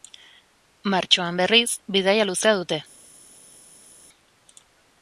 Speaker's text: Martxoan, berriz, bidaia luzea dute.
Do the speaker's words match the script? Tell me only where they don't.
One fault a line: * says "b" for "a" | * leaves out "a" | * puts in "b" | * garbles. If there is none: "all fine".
all fine